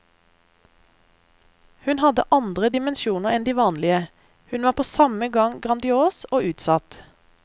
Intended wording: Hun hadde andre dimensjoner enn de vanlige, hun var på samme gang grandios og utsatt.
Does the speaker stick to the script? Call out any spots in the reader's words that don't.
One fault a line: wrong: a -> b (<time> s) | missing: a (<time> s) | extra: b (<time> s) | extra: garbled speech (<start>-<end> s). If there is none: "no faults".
no faults